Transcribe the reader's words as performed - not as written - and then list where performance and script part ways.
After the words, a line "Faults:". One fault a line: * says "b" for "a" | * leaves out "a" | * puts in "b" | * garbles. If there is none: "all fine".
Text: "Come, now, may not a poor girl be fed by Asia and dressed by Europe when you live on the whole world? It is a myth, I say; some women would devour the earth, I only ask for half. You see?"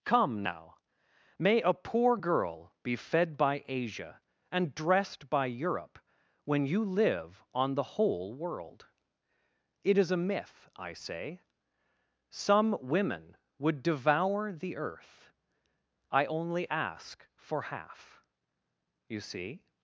"Come, now, may a poor girl be fed by Asia and dressed by Europe when you live on the whole world? It is a myth, I say; some women would devour the earth, I only ask for half. You see?"
Faults:
* leaves out "not"